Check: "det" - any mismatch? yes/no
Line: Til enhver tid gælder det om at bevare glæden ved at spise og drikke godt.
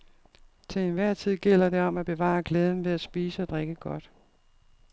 no